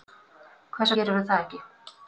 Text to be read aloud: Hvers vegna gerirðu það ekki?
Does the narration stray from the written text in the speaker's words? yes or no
yes